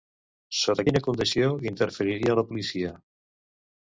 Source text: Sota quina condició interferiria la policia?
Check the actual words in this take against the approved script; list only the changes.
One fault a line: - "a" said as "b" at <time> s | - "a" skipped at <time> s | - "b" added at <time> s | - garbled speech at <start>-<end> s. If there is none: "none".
none